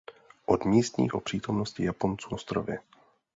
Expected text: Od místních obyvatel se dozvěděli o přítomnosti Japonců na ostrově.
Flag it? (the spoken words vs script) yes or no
yes